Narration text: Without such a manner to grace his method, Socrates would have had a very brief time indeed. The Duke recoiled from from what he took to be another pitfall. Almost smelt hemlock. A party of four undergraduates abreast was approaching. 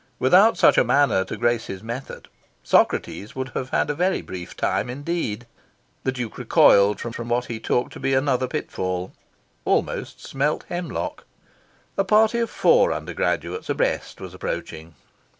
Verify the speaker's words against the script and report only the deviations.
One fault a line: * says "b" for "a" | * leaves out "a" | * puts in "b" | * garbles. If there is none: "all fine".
all fine